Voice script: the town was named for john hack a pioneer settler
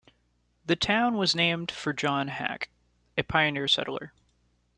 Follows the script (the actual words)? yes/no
yes